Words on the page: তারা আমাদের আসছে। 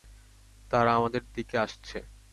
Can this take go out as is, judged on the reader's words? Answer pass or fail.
fail